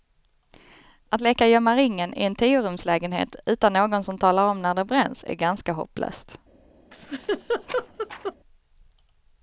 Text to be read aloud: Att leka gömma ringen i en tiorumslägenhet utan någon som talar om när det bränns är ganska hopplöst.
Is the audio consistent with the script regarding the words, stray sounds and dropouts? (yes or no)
no